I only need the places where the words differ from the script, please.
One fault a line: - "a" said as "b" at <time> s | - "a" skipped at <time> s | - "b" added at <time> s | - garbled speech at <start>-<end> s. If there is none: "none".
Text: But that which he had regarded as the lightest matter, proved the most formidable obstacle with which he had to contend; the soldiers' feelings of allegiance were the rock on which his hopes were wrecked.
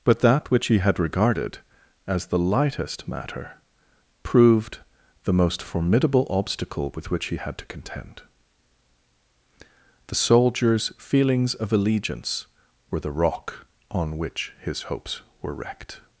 none